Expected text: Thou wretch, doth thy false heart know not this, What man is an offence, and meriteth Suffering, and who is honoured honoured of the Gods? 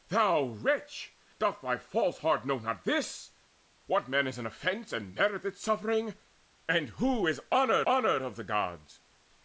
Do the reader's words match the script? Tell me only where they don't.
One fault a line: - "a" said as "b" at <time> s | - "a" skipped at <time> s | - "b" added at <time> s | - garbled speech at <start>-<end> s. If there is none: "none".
none